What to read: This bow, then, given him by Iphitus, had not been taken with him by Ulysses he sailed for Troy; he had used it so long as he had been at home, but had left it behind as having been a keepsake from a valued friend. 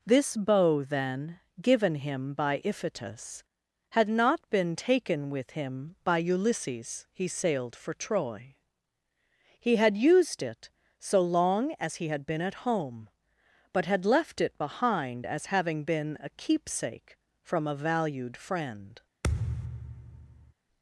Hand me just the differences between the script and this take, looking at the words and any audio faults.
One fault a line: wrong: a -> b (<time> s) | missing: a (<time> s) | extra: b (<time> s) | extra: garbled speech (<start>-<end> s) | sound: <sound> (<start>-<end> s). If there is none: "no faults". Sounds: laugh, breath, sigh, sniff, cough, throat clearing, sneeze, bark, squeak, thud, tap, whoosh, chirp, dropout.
sound: thud (19.2-20.5 s)